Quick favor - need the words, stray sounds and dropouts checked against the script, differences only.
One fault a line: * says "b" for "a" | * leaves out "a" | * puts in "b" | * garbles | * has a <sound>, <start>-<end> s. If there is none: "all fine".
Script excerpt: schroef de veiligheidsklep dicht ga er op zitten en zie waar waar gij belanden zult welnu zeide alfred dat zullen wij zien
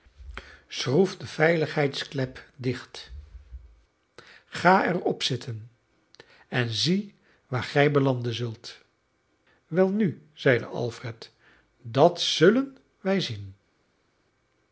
* leaves out "waar"